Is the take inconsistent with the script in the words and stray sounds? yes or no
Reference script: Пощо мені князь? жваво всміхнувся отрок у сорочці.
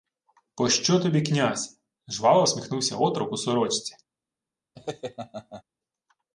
yes